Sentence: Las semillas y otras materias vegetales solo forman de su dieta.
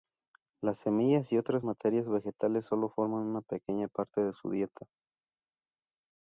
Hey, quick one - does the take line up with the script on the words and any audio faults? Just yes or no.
no